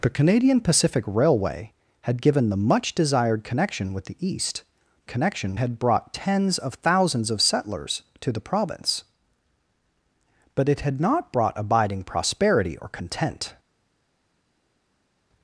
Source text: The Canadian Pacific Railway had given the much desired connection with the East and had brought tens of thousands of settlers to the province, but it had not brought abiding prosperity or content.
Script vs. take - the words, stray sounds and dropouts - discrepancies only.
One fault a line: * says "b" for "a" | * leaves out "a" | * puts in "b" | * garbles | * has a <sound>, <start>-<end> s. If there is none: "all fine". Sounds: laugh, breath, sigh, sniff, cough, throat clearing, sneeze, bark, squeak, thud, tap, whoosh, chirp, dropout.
* says "connection" for "and"